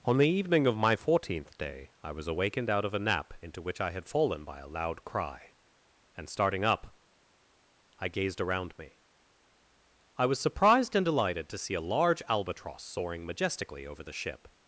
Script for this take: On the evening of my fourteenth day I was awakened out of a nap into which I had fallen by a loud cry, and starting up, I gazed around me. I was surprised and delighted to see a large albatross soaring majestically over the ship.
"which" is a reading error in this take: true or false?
false